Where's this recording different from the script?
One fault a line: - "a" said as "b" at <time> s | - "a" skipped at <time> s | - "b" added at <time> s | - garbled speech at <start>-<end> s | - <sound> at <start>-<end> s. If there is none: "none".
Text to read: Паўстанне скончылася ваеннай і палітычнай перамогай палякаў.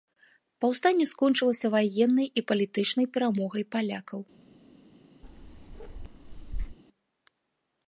- bark at 5.2-6.8 s